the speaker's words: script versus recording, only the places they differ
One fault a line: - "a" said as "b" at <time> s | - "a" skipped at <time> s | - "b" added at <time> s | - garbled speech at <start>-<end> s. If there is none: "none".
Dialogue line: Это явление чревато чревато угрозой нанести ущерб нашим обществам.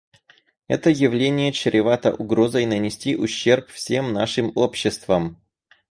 - "чревато" skipped at 2.1 s
- "всем" added at 3.7 s